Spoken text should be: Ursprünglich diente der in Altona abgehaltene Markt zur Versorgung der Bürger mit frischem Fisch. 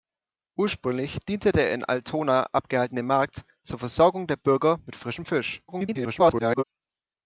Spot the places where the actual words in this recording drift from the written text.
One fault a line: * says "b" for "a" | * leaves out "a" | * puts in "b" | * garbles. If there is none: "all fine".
* garbles